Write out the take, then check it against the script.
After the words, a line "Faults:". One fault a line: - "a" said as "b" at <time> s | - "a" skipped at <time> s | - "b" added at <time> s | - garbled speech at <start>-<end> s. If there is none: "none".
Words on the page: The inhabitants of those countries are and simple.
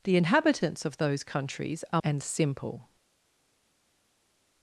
The inhabitants of those countries are and simple.
Faults:
none